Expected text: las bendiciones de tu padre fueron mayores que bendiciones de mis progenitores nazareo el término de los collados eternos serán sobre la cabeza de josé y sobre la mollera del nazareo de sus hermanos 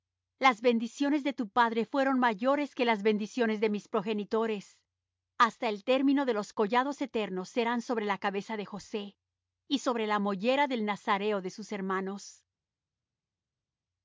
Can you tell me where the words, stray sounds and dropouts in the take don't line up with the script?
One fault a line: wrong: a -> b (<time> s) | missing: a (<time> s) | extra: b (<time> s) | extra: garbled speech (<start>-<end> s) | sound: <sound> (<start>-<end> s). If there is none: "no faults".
extra: las (2.9 s)
wrong: nazareo -> hasta (5.4 s)